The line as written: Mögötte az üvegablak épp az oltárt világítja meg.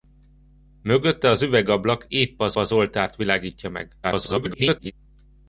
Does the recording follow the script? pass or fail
fail